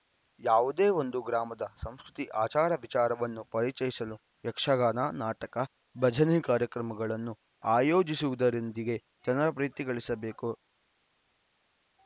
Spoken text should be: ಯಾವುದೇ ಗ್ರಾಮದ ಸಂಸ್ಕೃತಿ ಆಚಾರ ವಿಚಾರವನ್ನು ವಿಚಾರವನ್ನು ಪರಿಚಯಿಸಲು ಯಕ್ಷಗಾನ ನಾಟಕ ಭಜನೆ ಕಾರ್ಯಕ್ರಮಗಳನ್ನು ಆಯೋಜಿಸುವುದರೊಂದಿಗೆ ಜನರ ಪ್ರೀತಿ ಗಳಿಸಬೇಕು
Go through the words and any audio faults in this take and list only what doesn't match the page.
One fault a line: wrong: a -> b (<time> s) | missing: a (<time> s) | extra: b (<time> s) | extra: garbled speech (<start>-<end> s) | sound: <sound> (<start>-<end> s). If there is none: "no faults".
extra: ಒಂದು (1.0 s)
missing: ವಿಚಾರವನ್ನು (3.4 s)